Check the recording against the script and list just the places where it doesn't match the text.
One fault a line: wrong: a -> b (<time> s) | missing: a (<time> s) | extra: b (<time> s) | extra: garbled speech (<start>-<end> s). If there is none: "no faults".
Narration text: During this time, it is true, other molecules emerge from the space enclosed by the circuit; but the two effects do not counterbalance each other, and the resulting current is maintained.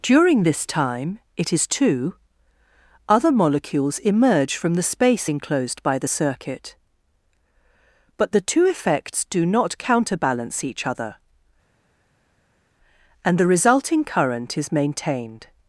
wrong: true -> two (1.7 s)